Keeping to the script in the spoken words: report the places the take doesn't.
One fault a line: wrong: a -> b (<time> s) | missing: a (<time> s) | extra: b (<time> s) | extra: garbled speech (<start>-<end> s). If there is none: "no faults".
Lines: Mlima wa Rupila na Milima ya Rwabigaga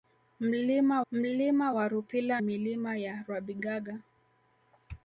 extra: mlima (1.1 s)
missing: na (2.4 s)